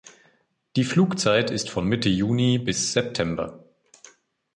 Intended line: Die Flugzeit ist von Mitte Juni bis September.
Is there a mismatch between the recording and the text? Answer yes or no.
no